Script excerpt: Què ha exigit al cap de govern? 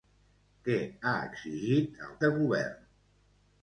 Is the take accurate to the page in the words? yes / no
no